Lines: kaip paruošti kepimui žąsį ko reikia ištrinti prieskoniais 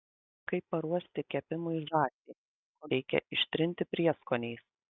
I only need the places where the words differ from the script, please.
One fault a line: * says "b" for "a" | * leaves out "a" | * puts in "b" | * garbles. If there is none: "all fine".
all fine